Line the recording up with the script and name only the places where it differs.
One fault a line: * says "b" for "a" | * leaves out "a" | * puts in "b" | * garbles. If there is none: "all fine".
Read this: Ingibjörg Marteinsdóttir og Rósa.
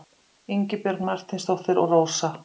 all fine